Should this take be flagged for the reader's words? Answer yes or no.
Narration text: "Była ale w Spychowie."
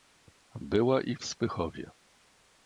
yes